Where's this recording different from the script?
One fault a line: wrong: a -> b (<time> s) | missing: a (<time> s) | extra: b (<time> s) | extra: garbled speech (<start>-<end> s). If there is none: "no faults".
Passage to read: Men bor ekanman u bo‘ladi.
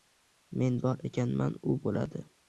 no faults